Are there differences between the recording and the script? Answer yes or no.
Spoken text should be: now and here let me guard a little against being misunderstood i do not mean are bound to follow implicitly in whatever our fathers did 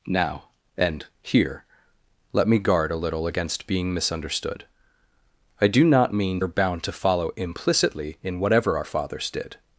no